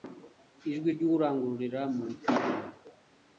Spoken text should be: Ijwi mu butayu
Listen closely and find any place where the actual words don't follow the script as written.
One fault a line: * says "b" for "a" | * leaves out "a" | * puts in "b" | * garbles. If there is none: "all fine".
* puts in "ry'urangururira"